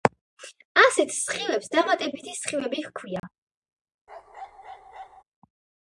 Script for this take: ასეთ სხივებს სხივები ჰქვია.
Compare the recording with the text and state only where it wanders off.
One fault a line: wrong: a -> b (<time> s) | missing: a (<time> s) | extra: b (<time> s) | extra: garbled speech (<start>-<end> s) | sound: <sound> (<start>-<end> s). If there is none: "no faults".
extra: დამატებითი (1.8 s)
sound: dropout (3.2-3.2 s)
sound: bark (4.1-5.2 s)